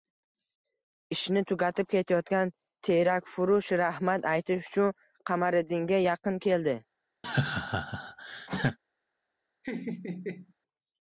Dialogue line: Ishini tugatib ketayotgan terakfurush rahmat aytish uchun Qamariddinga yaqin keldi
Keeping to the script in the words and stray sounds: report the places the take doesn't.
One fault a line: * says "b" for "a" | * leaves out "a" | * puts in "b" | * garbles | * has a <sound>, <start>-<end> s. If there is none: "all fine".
* has a laugh, 7.2-8.8 s
* has a laugh, 9.6-10.5 s